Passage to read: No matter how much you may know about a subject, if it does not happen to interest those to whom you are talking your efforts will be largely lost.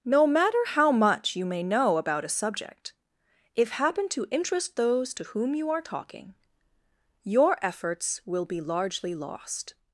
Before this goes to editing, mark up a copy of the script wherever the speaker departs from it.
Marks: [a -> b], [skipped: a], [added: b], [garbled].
No matter how much you may know about a subject, if [skipped: it does not] happen to interest those to whom you are talking your efforts will be largely lost.